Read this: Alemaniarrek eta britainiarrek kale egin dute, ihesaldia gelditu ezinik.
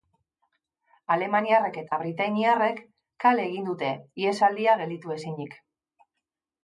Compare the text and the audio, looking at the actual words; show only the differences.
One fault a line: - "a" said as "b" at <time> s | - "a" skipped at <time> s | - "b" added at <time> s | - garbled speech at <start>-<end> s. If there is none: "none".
none